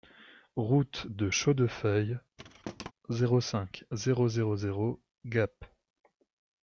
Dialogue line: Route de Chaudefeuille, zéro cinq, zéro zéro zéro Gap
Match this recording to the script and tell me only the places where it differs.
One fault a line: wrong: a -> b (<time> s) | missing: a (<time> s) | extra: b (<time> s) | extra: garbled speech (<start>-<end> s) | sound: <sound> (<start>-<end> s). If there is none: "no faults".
sound: thud (2.4-2.9 s)